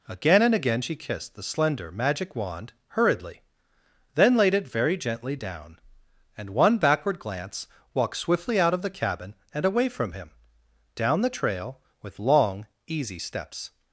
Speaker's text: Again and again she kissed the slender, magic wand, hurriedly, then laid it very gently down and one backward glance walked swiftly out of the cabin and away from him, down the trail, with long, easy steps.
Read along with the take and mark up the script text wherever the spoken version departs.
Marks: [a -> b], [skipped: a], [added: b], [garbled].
Again and again she kissed the slender, magic wand, hurriedly, then laid it very gently down and one backward glance walked swiftly out of the cabin and away from him, down the trail, with long, easy steps.